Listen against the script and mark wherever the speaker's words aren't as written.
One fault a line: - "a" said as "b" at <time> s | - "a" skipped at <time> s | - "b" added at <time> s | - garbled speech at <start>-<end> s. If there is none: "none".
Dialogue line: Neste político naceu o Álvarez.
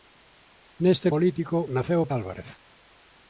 none